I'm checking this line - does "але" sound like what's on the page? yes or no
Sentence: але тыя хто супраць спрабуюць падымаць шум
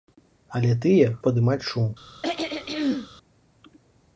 yes